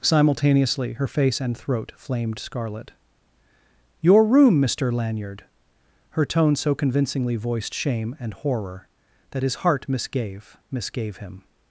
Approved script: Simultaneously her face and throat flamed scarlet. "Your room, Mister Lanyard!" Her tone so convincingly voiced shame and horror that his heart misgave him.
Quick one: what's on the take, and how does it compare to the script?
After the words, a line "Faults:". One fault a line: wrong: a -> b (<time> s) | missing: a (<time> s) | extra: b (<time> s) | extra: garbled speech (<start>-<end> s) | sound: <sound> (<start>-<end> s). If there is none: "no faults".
Simultaneously her face and throat flamed scarlet. "Your room, Mister Lanyard!" Her tone so convincingly voiced shame and horror that his heart misgave misgave him.
Faults:
extra: misgave (10.7 s)